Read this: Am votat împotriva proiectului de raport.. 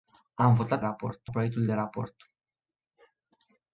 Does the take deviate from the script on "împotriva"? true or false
true